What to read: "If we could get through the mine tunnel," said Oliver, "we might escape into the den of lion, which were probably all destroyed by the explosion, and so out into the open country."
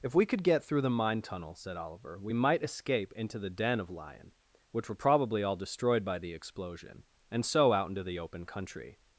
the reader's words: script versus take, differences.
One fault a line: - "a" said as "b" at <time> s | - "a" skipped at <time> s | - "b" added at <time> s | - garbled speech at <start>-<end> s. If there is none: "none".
none